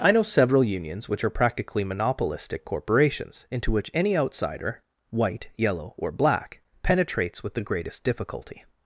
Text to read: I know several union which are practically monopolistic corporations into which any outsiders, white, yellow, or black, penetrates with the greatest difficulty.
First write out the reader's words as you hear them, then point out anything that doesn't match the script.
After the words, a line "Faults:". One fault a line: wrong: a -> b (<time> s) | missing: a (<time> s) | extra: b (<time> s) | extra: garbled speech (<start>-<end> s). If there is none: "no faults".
I know several unions which are practically monopolistic corporations into which any outsider, white, yellow, or black, penetrates with the greatest difficulty.
Faults:
wrong: union -> unions (0.6 s)
wrong: outsiders -> outsider (4.2 s)